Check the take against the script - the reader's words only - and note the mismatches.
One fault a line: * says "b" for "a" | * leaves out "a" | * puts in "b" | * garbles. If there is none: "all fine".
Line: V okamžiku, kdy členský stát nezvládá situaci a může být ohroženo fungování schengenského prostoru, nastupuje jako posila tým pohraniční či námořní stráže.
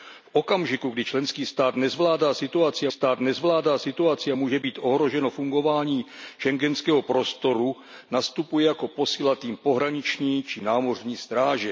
* puts in "stát nezvládá situaci"